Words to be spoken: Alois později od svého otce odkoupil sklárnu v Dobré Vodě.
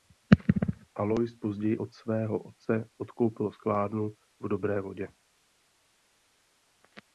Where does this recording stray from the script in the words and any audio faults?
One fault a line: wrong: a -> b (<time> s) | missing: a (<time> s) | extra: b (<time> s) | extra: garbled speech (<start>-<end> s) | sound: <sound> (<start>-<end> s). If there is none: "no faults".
no faults